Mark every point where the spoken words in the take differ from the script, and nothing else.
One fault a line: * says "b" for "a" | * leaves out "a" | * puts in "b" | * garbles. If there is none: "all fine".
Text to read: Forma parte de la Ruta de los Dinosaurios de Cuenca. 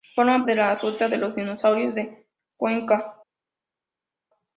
* leaves out "parte"